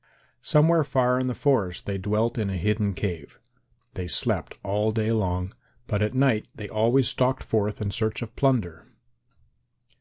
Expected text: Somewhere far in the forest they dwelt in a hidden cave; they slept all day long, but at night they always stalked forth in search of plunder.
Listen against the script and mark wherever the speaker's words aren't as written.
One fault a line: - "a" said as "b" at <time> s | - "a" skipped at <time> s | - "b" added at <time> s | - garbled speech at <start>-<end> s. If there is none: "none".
none